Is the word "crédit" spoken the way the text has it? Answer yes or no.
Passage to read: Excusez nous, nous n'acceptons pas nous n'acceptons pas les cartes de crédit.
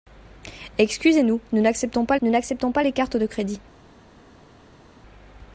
yes